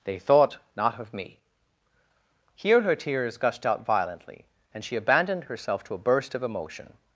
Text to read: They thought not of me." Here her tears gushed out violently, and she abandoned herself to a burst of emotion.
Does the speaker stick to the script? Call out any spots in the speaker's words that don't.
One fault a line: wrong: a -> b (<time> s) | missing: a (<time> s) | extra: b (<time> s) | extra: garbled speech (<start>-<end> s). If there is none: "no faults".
no faults